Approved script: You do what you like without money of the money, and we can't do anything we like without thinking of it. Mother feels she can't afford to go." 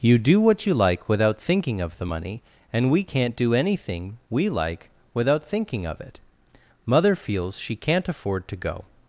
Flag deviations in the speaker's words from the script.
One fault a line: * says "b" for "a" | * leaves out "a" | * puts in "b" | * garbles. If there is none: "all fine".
* says "thinking" for "money"